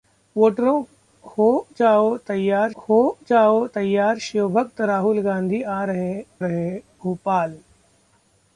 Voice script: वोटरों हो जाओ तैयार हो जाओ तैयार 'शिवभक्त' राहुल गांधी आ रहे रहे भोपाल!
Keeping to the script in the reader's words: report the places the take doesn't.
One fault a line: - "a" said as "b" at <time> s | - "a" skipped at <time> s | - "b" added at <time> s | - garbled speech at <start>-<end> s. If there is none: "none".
none